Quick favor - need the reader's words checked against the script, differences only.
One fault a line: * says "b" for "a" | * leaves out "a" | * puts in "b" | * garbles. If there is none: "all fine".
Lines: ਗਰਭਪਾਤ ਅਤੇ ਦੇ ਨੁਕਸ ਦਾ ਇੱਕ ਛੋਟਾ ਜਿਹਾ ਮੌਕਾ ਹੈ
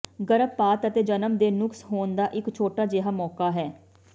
* puts in "ਜਨਮ"
* puts in "ਹੋਣ"